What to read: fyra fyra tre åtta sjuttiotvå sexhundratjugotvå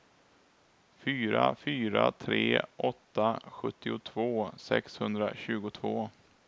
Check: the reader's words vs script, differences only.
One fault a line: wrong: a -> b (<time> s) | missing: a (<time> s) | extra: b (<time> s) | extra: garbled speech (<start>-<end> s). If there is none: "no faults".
no faults